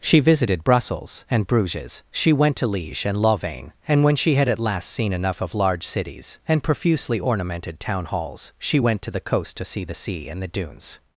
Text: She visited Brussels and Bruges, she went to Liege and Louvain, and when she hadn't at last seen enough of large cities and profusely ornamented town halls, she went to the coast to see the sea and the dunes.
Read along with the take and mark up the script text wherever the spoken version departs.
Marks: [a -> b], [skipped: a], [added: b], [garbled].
She visited Brussels and Bruges, she went to Liege and Louvain, and when she [hadn't -> had] at last seen enough of large cities and profusely ornamented town halls, she went to the coast to see the sea and the dunes.